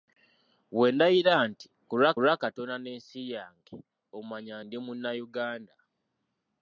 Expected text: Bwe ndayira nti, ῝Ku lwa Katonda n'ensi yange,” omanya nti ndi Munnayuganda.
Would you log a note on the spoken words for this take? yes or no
yes